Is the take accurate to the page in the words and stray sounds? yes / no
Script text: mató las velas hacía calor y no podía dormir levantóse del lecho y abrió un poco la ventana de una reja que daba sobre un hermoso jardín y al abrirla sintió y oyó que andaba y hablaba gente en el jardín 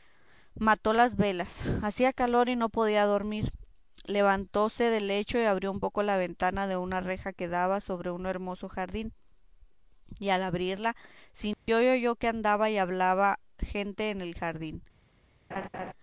no